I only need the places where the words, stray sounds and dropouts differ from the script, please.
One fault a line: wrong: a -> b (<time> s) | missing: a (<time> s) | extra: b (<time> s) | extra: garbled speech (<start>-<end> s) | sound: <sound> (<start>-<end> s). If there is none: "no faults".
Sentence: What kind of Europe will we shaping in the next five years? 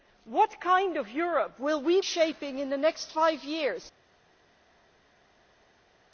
no faults